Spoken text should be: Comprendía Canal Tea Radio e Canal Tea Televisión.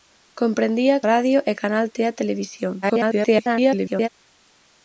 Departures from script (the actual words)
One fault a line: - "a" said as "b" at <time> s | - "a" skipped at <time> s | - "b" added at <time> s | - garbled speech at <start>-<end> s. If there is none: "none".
- "Canal Tea" skipped at 1.0 s
- garbled speech at 2.8-4.1 s